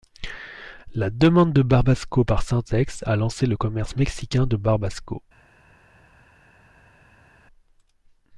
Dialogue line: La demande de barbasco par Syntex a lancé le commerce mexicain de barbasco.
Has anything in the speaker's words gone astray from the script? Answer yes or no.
no